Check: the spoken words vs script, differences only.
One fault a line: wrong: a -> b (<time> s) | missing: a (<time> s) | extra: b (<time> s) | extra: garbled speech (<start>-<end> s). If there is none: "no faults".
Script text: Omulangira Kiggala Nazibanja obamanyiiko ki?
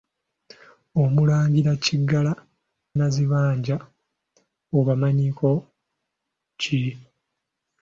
no faults